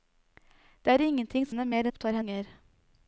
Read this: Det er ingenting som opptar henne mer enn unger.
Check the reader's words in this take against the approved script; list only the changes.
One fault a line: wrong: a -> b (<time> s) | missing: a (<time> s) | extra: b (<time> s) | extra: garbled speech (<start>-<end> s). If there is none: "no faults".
missing: som opptar (1.5 s)
wrong: enn -> opptar (1.9 s)